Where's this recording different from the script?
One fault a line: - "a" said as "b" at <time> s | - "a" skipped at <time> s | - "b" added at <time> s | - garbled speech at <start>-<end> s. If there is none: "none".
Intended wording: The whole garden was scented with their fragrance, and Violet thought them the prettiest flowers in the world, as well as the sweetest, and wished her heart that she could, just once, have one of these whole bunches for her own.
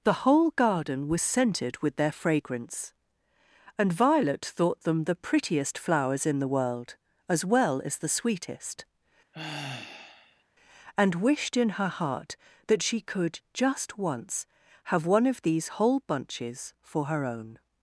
- "in" added at 11.5 s